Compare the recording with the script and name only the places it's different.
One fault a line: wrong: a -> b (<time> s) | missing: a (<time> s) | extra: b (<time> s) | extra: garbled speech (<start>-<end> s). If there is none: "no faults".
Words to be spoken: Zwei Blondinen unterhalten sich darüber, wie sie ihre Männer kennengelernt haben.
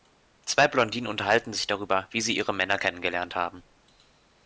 no faults